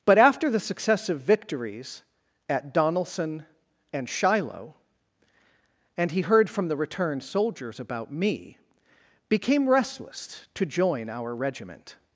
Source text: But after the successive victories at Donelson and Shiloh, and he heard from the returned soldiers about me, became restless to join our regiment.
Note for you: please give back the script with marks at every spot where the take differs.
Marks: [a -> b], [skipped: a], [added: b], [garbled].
But after the successive victories at Donelson and Shiloh, and he heard from the returned soldiers about me, became restless to join our regiment.